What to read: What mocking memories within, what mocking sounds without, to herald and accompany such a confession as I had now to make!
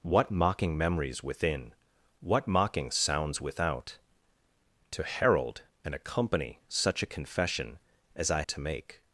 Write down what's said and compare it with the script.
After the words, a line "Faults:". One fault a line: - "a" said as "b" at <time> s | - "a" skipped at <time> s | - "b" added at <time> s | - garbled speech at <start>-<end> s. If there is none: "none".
What mocking memories within, what mocking sounds without, to herald and accompany such a confession as I to make!
Faults:
- "had now" skipped at 8.4 s